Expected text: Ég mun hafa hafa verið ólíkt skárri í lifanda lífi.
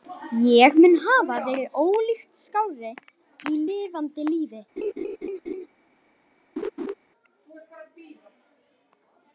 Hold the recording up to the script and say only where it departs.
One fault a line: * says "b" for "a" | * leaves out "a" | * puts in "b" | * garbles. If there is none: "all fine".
* leaves out "hafa"